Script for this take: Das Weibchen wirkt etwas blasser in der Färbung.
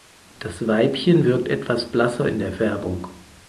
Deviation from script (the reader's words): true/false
false